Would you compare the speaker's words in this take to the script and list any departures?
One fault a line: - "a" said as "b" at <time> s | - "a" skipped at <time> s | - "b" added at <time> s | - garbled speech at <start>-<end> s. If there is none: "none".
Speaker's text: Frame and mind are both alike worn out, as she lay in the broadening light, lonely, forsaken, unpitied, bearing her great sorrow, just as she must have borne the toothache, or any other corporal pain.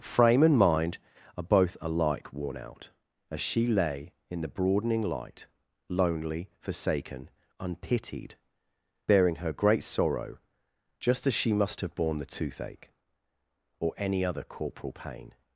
none